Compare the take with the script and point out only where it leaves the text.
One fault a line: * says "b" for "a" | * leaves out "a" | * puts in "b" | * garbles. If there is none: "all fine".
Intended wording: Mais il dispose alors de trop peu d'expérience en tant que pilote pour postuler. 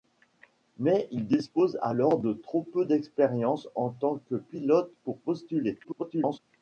* garbles